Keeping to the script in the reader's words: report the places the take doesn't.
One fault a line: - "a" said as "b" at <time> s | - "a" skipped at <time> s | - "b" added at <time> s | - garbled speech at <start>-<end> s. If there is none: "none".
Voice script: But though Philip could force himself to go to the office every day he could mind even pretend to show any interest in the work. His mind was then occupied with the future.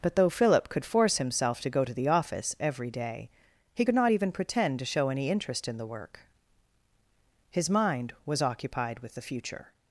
- "mind" said as "not" at 3.9 s
- "then" skipped at 8.4 s